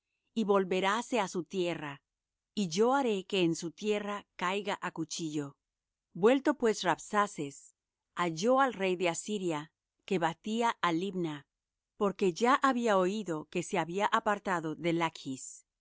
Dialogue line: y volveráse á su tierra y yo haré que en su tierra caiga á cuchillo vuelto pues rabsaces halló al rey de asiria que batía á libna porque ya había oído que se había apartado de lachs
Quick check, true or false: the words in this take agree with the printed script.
true